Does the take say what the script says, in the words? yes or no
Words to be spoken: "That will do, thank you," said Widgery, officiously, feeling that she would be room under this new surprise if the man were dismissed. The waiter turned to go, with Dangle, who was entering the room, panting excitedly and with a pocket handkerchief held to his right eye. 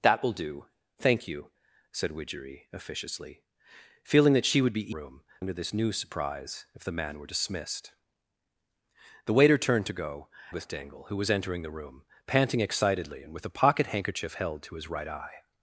yes